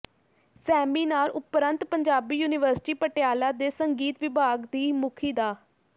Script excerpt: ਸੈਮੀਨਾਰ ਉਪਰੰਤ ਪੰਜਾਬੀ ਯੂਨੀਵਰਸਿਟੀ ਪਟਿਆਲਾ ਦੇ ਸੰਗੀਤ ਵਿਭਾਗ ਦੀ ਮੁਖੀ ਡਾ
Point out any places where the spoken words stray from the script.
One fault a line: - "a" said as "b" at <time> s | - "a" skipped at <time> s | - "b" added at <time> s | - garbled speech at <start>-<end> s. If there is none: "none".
none